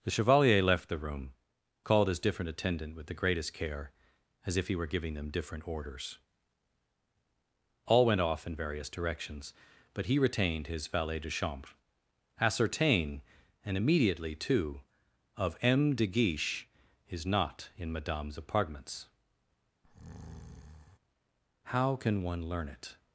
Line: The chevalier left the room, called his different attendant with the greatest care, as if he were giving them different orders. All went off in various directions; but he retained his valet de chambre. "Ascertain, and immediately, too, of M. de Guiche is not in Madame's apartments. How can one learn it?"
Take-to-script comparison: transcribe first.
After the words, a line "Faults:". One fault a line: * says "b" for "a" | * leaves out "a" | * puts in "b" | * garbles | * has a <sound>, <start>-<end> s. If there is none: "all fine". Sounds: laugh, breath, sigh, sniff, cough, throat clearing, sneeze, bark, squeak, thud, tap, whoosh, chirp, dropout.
The chevalier left the room, called his different attendant with the greatest care, as if he were giving them different orders. All went off in various directions; but he retained his valet de chambre. "Ascertain, and immediately, too, of M. de Guiche is not in Madame's apartments. How can one learn it?"
Faults:
* has a breath, 19.8-21.0 s